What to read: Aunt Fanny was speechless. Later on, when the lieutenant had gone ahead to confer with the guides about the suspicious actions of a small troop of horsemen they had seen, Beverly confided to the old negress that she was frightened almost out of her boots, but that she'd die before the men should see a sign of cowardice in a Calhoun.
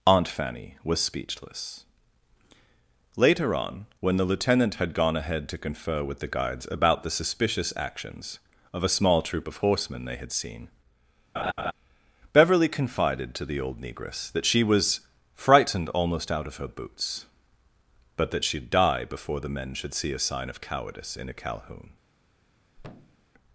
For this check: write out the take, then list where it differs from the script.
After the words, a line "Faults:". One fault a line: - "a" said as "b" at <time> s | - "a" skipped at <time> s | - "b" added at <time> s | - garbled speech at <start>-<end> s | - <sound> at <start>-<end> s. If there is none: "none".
Aunt Fanny was speechless. Later on, when the lieutenant had gone ahead to confer with the guides about the suspicious actions of a small troop of horsemen they had seen, Beverly confided to the old negress that she was frightened almost out of her boots, but that she'd die before the men should see a sign of cowardice in a Calhoun.
Faults:
- laugh at 11.3-11.7 s
- thud at 22.8-23.3 s